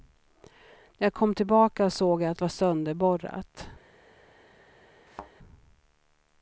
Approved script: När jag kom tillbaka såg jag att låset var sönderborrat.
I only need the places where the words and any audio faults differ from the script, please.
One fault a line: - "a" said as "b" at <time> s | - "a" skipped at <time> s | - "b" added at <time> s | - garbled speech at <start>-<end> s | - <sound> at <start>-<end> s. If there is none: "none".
- "låset" skipped at 2.4 s
- thud at 5.1-5.3 s